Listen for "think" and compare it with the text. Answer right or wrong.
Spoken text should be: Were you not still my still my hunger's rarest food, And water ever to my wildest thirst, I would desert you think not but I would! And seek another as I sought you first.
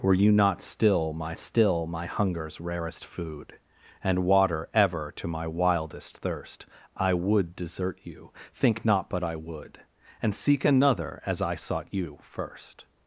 right